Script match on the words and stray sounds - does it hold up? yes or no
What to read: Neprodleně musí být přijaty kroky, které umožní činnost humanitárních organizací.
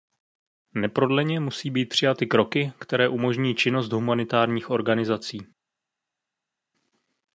yes